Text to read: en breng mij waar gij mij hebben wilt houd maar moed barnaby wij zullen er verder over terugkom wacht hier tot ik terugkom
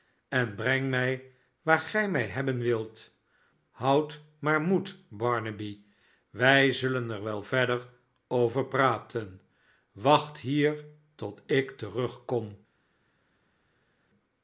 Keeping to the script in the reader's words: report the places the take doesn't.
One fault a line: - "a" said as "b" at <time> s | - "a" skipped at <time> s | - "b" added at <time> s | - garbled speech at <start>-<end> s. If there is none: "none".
- "wel" added at 7.2 s
- "terugkom" said as "praten" at 8.7 s